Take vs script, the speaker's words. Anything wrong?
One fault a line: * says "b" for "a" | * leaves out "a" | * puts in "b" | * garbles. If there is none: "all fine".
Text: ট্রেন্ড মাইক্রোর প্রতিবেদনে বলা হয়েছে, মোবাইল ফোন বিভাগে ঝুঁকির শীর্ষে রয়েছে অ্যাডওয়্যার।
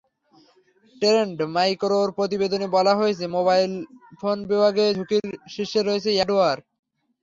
all fine